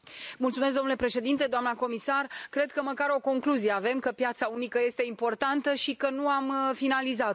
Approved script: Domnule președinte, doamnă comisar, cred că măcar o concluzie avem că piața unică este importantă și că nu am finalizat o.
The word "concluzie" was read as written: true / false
true